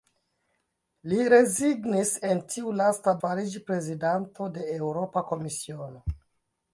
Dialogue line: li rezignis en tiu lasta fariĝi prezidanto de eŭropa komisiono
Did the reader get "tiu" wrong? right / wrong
right